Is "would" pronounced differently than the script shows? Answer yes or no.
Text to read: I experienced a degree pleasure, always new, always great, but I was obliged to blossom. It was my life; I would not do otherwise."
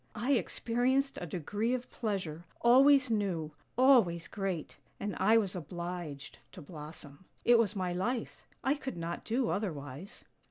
yes